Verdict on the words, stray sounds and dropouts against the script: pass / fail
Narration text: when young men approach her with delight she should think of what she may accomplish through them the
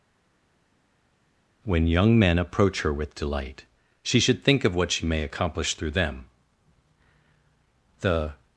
pass